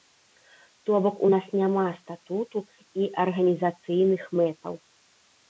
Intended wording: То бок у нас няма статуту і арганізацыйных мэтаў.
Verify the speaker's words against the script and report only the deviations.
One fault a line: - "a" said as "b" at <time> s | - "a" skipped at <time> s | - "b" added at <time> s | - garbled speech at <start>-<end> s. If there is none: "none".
none